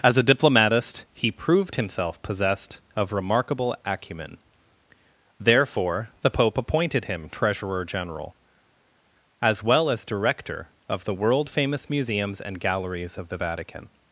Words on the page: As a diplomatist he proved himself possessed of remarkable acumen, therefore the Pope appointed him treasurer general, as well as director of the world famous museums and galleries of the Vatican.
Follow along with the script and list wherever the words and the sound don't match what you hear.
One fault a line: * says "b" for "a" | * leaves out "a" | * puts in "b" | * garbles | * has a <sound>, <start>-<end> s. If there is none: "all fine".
all fine